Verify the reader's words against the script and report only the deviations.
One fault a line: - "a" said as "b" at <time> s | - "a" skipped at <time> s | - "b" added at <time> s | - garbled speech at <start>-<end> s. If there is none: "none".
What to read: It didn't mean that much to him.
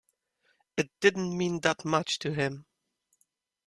none